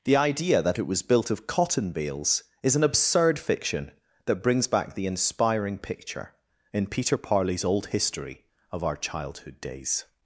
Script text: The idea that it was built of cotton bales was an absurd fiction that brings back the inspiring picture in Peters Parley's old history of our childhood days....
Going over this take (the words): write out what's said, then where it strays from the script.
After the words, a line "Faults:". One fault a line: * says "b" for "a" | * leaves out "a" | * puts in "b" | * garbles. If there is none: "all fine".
The idea that it was built of cotton bales is an absurd fiction that brings back the inspiring picture in Peter Parley's old history of our childhood days....
Faults:
* says "is" for "was"
* says "Peter" for "Peters"